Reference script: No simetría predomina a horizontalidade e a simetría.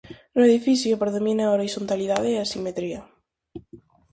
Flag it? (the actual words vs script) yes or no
yes